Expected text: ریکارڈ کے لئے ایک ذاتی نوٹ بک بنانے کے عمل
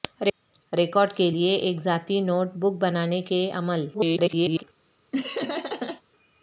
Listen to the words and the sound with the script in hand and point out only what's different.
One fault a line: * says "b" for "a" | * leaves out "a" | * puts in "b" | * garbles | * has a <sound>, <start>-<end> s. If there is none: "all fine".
* garbles
* has a laugh, 5.1-6.0 s